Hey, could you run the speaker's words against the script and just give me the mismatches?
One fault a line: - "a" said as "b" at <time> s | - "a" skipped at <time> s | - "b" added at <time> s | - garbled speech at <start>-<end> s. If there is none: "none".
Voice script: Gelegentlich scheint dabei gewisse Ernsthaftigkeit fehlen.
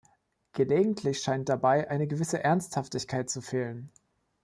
- "eine" added at 1.9 s
- "zu" added at 3.3 s